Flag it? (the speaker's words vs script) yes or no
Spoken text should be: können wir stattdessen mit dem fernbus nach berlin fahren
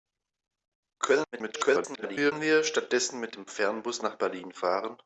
yes